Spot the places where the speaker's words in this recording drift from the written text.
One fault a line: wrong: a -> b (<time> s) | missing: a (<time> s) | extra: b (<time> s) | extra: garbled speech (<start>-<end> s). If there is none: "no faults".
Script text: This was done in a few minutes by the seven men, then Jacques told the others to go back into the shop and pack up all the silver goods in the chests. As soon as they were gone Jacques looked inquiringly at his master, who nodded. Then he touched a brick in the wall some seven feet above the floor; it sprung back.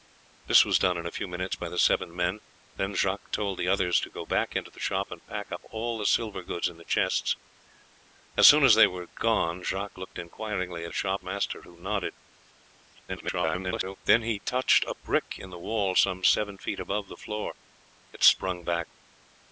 wrong: his -> shop (10.9 s)
extra: garbled speech (13.1-14.0 s)